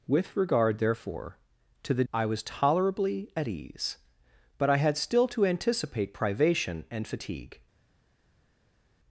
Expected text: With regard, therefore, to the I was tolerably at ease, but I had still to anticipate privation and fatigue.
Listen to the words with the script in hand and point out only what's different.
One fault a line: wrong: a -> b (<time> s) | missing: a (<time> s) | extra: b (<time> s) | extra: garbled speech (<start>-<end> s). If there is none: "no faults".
no faults